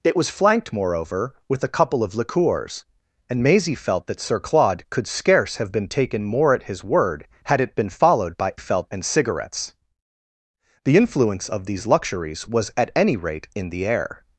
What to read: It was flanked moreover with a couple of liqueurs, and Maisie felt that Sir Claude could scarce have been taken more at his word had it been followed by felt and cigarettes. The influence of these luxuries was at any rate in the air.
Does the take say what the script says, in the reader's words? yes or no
yes